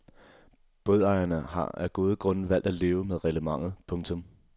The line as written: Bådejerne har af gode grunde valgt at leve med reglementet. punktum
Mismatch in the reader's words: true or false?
false